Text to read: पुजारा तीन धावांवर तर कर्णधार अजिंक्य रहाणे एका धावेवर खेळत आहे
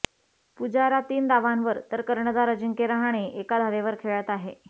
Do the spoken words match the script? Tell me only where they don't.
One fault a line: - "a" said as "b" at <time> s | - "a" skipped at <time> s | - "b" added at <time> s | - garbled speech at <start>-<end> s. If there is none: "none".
none